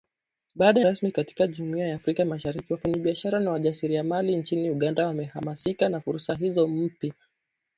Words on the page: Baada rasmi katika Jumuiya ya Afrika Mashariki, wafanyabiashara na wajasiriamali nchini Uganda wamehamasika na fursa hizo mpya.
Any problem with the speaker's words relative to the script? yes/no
no